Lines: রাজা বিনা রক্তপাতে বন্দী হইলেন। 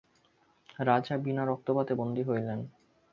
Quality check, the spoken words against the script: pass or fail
pass